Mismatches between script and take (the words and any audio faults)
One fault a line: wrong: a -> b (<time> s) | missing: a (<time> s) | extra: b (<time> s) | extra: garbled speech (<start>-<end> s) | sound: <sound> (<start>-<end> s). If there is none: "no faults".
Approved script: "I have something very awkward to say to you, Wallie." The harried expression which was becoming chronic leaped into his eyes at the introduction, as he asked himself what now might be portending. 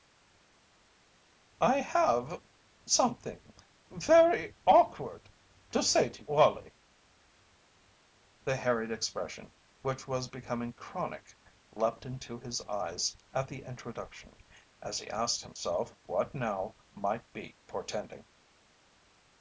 missing: you (6.3 s)